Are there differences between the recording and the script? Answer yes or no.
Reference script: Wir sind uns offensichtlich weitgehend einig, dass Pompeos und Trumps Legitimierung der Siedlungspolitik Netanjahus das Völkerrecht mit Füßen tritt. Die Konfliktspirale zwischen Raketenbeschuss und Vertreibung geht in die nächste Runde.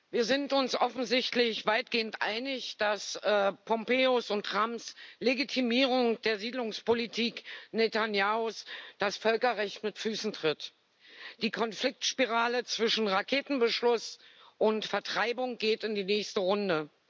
no